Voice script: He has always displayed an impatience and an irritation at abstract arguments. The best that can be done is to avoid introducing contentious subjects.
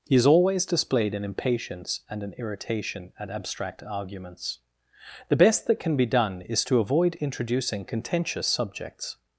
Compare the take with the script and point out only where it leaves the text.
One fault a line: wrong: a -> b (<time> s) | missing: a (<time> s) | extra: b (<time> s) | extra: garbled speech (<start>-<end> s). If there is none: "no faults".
no faults